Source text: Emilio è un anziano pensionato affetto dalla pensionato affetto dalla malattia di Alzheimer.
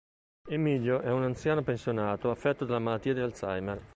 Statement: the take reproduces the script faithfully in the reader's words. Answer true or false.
false